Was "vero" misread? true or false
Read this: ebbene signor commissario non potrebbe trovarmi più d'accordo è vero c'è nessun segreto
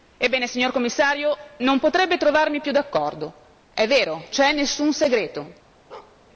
false